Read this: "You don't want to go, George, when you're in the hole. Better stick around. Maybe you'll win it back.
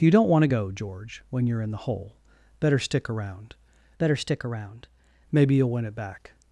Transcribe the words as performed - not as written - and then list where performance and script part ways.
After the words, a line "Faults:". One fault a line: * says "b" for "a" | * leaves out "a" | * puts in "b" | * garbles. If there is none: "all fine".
"You don't want to go, George, when you're in the hole. Better stick around better stick around. Maybe you'll win it back.
Faults:
* puts in "better stick around"